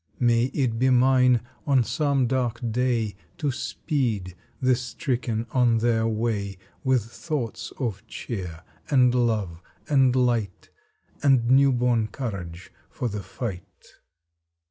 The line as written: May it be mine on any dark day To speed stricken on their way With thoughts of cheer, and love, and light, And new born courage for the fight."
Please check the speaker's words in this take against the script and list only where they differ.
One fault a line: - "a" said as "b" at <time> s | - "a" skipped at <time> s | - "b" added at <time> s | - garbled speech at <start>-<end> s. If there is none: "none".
- "any" said as "some" at 1.8 s
- "the" added at 4.6 s